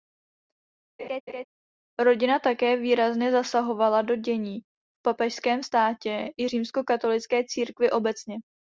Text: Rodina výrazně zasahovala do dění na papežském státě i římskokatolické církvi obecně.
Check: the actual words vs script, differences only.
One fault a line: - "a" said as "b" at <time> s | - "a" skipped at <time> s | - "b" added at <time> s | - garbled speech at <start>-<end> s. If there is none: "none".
- "také" added at 2.4 s
- "na" said as "v" at 4.6 s